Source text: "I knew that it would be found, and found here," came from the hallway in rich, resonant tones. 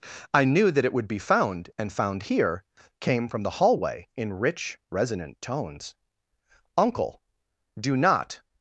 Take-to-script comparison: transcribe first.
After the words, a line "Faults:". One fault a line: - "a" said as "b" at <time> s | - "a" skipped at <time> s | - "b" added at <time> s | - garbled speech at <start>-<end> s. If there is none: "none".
"I knew that it would be found, and found here," came from the hallway in rich, resonant tones. "Uncle, do not
Faults:
- "Uncle do not" added at 6.8 s